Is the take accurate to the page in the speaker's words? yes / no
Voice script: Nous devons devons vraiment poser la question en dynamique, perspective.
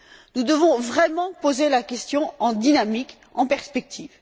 no